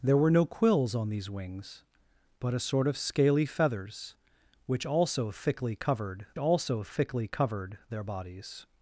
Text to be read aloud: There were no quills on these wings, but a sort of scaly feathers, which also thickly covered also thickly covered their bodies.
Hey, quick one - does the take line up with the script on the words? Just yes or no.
yes